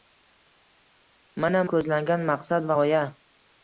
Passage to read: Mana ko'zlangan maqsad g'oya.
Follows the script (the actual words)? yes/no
yes